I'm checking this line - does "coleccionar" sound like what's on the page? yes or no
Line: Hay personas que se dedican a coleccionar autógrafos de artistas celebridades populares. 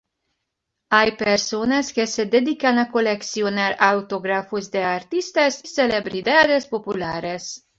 yes